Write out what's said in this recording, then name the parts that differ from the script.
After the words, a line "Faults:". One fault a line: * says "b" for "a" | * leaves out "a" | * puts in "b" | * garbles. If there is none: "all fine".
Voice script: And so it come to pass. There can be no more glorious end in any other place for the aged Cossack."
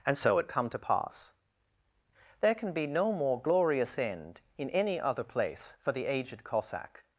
And so it come to pass. There can be no more glorious end in any other place for the aged Cossack."
Faults:
all fine